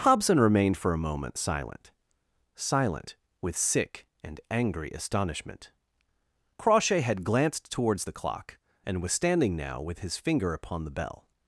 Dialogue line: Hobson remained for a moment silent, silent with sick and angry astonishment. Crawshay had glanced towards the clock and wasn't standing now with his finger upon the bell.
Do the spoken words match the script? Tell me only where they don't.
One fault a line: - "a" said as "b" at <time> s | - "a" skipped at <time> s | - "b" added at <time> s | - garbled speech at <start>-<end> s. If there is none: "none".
- "wasn't" said as "was" at 9.0 s